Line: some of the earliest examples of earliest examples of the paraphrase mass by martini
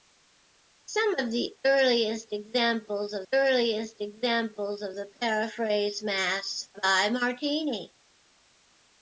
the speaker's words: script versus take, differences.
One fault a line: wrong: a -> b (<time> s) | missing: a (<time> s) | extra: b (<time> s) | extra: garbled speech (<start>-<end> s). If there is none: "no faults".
no faults